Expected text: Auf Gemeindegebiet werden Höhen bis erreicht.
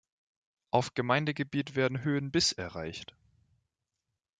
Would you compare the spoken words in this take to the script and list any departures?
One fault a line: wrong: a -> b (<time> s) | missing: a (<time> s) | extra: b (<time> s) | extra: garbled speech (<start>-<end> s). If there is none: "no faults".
no faults